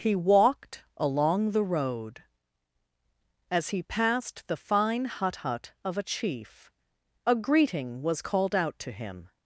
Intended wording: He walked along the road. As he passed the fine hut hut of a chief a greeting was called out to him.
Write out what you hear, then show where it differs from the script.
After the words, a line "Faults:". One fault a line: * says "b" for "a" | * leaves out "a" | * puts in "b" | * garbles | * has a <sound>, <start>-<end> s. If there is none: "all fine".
He walked along the road. As he passed the fine hut hut of a chief a greeting was called out to him.
Faults:
all fine